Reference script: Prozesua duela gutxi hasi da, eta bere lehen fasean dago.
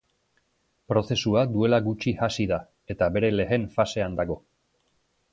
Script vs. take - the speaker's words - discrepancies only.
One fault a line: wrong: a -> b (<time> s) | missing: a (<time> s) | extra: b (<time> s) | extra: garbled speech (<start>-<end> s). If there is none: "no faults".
no faults